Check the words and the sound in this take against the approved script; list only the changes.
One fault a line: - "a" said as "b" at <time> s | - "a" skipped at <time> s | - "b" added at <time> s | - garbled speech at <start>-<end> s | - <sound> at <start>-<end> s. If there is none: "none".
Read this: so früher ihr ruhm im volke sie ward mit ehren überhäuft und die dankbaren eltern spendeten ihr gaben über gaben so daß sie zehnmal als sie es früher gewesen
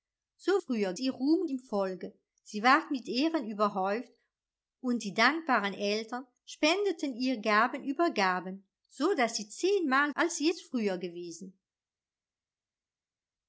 none